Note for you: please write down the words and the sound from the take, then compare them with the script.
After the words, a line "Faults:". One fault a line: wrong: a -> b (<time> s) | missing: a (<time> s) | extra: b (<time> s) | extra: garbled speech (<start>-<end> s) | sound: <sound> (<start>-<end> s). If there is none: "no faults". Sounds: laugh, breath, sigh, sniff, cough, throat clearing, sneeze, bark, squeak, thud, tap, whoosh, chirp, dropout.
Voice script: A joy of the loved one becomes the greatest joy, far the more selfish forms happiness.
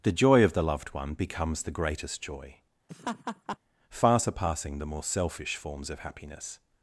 The joy of the loved one becomes the greatest joy, far surpassing the more selfish forms of happiness.
Faults:
wrong: A -> The (0.0 s)
sound: laugh (2.9-3.6 s)
extra: surpassing (4.2 s)
extra: of (5.9 s)